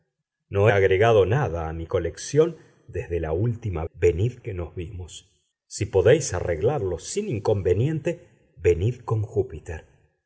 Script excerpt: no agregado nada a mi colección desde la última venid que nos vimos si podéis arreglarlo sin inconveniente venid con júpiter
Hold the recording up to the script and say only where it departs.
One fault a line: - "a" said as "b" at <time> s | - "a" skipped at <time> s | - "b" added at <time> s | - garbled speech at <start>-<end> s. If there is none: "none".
none